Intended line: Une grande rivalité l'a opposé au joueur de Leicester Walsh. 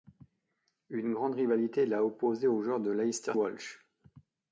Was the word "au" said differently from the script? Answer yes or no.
no